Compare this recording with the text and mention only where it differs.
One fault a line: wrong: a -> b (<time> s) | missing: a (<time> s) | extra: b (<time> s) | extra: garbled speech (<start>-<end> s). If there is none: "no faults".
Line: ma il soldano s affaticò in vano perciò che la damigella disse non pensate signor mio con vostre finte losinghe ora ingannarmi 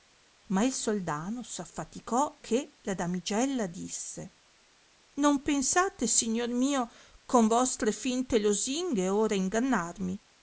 missing: in vano perciò (2.4 s)